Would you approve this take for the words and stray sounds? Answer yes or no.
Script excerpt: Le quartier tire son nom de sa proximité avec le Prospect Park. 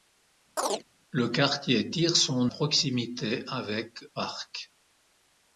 no